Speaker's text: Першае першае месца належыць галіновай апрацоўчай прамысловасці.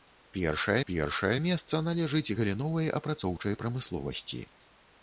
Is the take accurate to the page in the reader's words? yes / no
yes